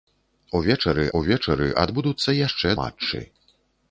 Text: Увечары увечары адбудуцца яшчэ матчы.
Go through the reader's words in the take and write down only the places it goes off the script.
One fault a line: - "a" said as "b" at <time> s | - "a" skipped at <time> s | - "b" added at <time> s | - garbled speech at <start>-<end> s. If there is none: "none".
none